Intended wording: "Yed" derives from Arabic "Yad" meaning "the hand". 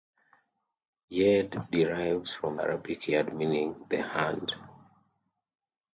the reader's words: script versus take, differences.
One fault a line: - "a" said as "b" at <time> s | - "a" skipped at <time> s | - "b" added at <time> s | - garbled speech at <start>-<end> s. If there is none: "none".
none